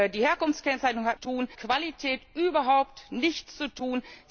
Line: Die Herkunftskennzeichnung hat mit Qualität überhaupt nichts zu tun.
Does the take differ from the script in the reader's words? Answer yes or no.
yes